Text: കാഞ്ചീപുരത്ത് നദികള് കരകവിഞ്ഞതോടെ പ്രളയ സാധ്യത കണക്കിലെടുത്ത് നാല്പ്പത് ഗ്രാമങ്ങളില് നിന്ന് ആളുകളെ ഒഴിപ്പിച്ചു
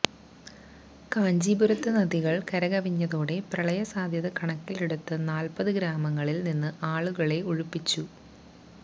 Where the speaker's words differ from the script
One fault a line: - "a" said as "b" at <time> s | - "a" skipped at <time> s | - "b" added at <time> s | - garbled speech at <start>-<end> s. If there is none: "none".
none